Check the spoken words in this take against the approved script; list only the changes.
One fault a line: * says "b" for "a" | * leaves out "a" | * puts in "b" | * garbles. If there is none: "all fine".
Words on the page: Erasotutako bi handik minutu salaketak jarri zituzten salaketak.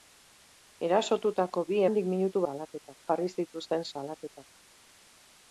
all fine